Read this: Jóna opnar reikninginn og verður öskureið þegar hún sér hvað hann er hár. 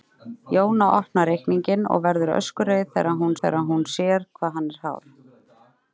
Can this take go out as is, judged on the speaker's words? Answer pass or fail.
fail